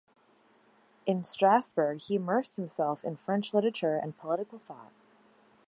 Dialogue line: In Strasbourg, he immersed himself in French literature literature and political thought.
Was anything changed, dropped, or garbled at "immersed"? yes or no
no